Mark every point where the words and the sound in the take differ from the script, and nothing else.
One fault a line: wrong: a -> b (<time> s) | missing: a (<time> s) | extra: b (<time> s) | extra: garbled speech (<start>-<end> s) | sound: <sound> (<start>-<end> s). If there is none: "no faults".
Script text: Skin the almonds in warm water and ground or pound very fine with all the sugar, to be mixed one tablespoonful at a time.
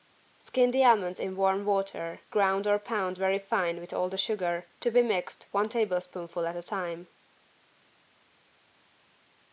missing: and (2.2 s)